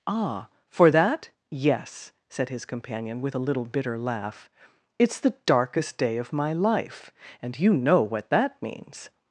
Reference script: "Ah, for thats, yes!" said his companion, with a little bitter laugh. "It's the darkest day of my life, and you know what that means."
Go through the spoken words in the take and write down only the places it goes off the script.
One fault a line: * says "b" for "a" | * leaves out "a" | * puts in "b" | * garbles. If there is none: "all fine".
* says "that" for "thats"